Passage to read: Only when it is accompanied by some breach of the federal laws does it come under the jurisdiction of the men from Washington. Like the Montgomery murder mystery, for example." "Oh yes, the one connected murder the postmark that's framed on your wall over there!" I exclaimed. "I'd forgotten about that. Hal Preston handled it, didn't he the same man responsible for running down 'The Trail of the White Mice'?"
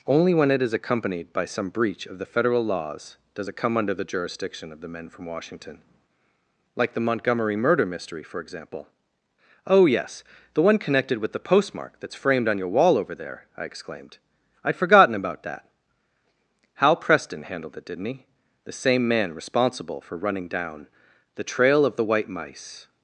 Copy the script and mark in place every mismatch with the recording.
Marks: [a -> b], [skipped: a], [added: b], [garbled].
Only when it is accompanied by some breach of the federal laws does it come under the jurisdiction of the men from Washington. Like the Montgomery murder mystery, for example." "Oh yes, the one connected [murder -> with] the postmark that's framed on your wall over there!" I exclaimed. "I'd forgotten about that. Hal Preston handled it, didn't he the same man responsible for running down 'The Trail of the White Mice'?"